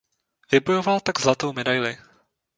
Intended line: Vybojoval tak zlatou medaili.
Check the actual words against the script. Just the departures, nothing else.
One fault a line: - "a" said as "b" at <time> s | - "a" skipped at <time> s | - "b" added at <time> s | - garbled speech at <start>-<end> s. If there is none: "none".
none